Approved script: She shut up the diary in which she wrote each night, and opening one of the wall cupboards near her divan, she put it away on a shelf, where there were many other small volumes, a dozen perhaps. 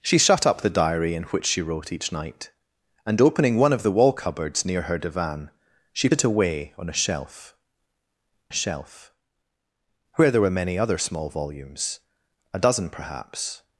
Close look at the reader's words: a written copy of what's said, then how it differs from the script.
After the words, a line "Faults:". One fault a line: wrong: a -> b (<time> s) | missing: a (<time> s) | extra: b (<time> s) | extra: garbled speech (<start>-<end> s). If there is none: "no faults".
She shut up the diary in which she wrote each night, and opening one of the wall cupboards near her divan, she it away on a shelf a shelf, where there were many other small volumes, a dozen perhaps.
Faults:
missing: put (6.1 s)
extra: a shelf (8.5 s)